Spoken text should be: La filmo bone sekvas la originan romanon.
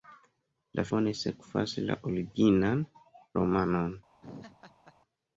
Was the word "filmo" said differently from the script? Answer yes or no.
yes